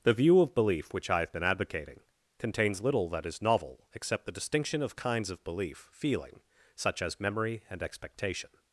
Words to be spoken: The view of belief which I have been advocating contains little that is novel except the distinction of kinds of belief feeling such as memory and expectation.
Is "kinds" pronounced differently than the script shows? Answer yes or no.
no